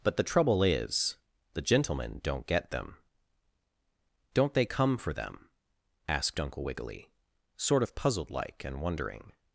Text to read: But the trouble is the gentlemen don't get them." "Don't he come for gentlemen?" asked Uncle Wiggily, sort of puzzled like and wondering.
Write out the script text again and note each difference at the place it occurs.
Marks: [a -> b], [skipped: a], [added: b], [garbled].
But the trouble is the gentlemen don't get them." "Don't [he -> they] come for [gentlemen?" -> them] asked Uncle Wiggily, sort of puzzled like and wondering.